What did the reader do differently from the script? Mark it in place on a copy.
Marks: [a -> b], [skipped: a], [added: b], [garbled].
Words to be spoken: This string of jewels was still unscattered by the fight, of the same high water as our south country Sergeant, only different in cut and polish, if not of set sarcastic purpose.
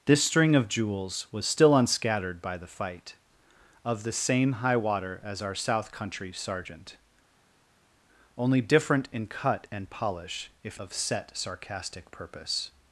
This string of jewels was still unscattered by the fight, of the same high water as our south country Sergeant, only different in cut and polish, if [skipped: not] of set sarcastic purpose.